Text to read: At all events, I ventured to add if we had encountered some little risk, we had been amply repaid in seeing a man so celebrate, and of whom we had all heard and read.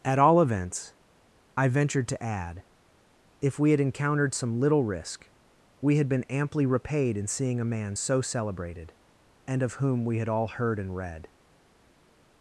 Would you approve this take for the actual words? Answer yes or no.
no